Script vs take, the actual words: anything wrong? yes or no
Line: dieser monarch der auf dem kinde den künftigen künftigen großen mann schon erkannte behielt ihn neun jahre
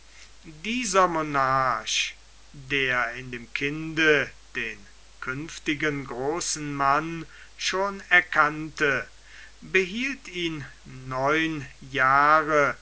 yes